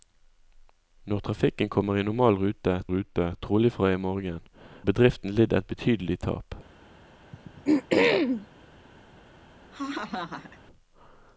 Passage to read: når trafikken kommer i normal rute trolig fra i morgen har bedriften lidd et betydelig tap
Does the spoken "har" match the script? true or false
false